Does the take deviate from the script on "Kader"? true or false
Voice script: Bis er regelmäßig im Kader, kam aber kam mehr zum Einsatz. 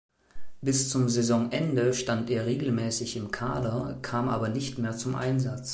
false